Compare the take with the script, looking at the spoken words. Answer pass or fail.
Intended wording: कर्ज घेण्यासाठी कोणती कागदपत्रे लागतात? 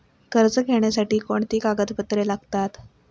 pass